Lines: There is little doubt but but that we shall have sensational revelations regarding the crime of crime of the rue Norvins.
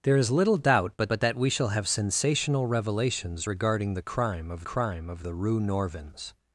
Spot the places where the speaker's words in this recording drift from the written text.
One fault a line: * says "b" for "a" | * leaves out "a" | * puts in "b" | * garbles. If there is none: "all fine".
all fine